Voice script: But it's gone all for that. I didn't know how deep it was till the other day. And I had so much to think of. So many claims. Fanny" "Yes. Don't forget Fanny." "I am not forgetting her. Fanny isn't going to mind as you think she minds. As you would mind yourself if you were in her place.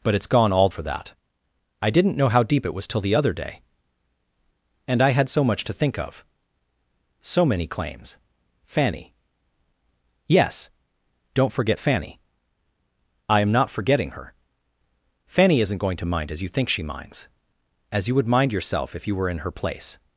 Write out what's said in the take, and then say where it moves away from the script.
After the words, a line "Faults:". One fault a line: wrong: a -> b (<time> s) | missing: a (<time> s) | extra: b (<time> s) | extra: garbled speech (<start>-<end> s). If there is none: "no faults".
But it's gone all for that. I didn't know how deep it was till the other day. And I had so much to think of. So many claims. Fanny" "Yes. Don't forget Fanny." "I am not forgetting her. Fanny isn't going to mind as you think she minds. As you would mind yourself if you were in her place.
Faults:
no faults